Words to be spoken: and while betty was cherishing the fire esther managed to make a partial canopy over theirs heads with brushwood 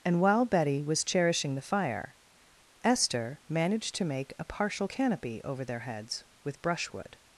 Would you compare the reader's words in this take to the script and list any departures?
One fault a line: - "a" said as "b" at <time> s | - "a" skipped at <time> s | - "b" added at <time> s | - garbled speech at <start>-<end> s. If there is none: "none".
- "theirs" said as "their" at 5.6 s